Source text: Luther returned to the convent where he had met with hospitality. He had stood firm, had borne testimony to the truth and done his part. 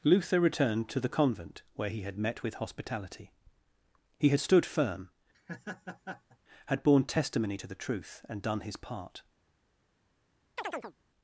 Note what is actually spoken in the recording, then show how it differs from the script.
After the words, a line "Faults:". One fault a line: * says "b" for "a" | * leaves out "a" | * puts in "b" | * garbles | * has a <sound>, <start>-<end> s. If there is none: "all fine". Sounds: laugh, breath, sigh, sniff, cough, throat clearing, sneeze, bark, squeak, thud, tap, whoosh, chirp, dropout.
Luther returned to the convent where he had met with hospitality. He had stood firm, had borne testimony to the truth and done his part.
Faults:
* has a laugh, 5.3-6.4 s
* has a chirp, 10.6-10.9 s